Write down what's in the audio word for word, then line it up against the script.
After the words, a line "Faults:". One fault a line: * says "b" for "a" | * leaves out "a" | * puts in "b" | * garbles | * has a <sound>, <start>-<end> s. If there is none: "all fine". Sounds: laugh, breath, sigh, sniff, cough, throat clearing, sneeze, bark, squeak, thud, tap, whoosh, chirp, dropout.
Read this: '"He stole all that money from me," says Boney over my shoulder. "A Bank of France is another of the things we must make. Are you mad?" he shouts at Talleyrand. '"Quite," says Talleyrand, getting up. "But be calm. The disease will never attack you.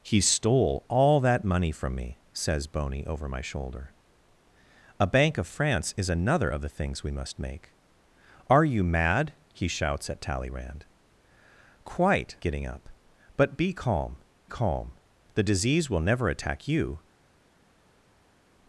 '"He stole all that money from me," says Boney over my shoulder. "A Bank of France is another of the things we must make. Are you mad?" he shouts at Talleyrand. '"Quite," getting up. "But be calm calm. The disease will never attack you.
Faults:
* leaves out "says Talleyrand"
* puts in "calm"